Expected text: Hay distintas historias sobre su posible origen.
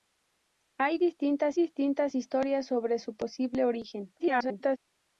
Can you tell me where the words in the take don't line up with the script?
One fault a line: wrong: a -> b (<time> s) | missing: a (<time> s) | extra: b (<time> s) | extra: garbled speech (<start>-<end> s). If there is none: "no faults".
extra: distintas (1.5 s)
extra: garbled speech (4.2-4.8 s)